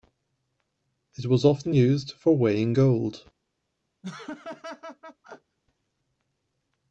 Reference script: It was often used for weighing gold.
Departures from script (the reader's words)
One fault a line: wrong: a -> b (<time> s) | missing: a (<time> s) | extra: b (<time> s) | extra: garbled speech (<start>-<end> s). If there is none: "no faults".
no faults